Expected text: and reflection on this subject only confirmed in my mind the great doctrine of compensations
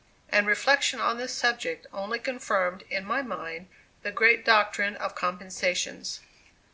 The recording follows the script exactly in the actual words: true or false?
true